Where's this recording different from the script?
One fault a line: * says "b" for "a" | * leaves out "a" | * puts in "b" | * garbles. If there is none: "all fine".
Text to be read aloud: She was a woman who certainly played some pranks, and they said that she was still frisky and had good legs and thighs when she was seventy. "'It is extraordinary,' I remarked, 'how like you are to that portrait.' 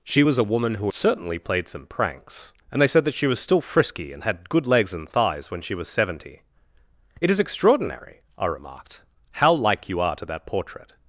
all fine